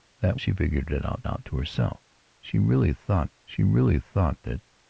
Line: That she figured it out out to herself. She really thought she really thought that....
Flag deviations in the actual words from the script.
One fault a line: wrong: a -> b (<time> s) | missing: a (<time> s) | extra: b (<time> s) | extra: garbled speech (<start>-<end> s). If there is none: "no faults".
no faults